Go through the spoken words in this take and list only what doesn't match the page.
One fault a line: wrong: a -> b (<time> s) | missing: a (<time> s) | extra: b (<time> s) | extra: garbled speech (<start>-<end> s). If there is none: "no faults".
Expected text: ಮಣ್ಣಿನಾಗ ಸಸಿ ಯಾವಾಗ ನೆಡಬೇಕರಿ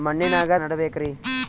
missing: ಸಸಿ ಯಾವಾಗ (0.5 s)